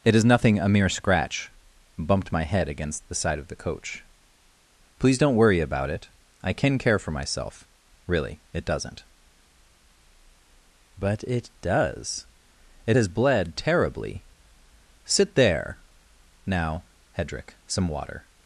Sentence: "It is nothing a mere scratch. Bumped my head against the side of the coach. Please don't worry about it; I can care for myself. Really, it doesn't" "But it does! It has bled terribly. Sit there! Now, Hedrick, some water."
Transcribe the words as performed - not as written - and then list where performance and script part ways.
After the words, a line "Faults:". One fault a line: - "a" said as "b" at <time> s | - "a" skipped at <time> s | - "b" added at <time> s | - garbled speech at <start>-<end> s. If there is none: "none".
"It is nothing a mere scratch. Bumped my head against the side of the coach. Please don't worry about it; I can care for myself. Really, it doesn't" "But it does! It has bled terribly. Sit there! Now, Hedrick, some water."
Faults:
none